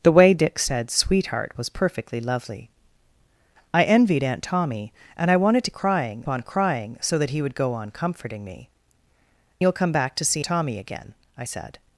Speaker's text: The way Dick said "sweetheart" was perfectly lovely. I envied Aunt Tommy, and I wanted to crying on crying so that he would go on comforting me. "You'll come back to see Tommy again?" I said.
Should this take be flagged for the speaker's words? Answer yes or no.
no